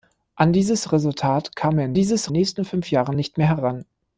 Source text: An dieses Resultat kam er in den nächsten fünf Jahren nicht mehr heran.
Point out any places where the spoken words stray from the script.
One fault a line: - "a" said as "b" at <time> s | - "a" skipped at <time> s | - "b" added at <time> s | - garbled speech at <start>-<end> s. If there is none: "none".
- "den" said as "dieses" at 1.9 s